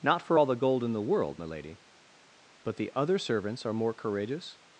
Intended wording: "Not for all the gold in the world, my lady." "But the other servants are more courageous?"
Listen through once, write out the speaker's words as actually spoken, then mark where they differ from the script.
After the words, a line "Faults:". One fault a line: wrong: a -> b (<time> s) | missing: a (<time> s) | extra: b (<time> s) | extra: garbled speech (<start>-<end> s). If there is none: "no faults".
"Not for all the gold in the world, my lady." "But the other servants are more courageous?"
Faults:
no faults